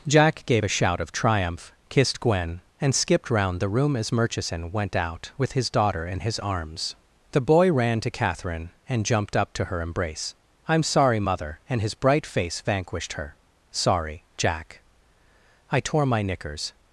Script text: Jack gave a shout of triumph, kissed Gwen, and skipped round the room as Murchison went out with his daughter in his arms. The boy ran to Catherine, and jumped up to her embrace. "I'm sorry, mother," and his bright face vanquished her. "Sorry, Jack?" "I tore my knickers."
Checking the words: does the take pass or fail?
pass